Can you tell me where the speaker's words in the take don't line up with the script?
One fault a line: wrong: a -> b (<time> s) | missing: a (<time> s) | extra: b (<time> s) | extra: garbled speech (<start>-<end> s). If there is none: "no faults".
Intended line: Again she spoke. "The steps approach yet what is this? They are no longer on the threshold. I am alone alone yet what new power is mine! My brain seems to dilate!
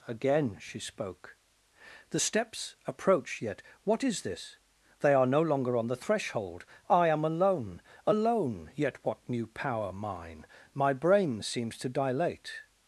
missing: is (9.9 s)